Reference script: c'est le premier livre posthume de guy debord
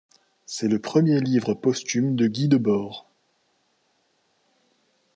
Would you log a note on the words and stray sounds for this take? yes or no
no